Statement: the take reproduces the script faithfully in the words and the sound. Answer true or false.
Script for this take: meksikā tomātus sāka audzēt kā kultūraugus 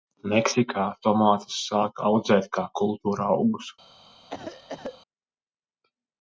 false